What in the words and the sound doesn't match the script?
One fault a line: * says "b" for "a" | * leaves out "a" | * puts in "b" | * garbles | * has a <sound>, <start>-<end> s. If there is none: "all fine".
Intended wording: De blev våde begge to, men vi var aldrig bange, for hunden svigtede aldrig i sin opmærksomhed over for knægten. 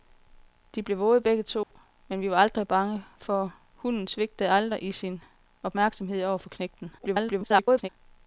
* has a dropout, 1.6-1.7 s
* garbles